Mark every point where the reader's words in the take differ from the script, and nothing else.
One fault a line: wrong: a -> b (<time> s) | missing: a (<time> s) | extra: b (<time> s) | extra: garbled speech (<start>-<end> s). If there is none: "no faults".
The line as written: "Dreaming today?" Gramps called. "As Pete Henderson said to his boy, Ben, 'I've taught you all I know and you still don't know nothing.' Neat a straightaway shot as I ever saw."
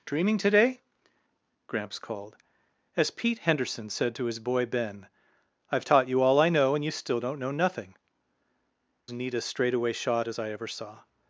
no faults